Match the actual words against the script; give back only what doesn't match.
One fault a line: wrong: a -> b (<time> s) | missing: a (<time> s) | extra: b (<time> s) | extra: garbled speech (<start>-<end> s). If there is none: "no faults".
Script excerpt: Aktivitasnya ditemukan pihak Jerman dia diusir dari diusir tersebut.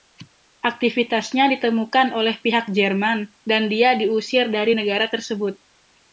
extra: oleh (2.2 s)
extra: dan (3.5 s)
wrong: diusir -> negara (4.7 s)